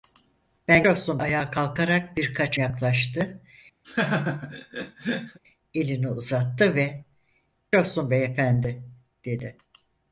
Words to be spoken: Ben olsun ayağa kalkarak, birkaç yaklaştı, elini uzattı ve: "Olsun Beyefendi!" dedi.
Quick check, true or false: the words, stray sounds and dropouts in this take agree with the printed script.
false